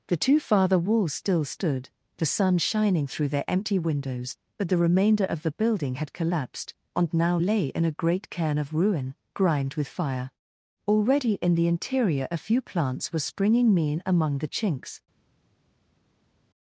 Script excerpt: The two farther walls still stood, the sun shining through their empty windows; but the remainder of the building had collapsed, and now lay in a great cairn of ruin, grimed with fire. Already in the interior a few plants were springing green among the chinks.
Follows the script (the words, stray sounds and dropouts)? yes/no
no